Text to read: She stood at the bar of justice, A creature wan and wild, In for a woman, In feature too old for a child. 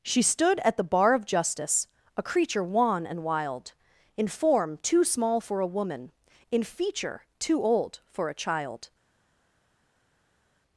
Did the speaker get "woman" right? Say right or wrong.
right